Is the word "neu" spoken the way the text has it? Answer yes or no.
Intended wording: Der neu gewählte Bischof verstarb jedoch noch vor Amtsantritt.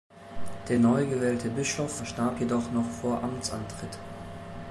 yes